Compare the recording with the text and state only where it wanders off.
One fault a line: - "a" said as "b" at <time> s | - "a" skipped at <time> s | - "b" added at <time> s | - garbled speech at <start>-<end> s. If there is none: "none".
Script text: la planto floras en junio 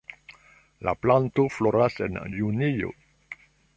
none